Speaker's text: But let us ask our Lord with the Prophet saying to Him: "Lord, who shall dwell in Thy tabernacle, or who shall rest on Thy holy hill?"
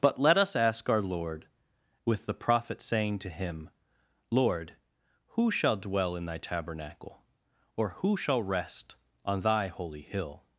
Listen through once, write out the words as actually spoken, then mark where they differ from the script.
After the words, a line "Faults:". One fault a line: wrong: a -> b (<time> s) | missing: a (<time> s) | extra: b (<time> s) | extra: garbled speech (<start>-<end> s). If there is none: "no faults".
But let us ask our Lord with the Prophet saying to Him: "Lord, who shall dwell in Thy tabernacle, or who shall rest on Thy holy hill?"
Faults:
no faults